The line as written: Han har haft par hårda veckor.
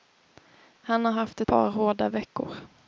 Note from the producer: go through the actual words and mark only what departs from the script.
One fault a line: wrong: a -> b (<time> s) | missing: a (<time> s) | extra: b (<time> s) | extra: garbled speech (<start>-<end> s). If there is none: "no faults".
no faults